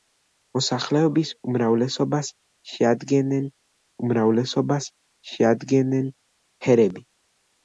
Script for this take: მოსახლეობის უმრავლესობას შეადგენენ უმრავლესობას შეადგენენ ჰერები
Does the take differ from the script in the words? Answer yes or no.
no